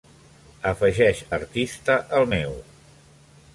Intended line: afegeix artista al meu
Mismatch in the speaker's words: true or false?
false